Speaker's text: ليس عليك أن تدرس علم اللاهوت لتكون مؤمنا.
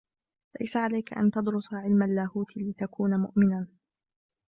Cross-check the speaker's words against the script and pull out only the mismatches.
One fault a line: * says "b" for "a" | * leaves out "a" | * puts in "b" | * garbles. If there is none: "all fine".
all fine